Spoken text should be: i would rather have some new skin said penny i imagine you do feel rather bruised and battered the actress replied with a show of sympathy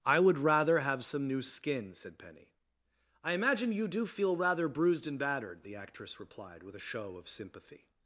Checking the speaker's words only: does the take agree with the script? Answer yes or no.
yes